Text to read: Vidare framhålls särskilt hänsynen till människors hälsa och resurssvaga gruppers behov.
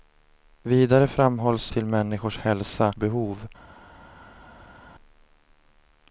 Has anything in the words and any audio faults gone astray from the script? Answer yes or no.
yes